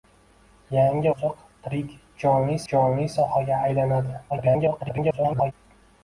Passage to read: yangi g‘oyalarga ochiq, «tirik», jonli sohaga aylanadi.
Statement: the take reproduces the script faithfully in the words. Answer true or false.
false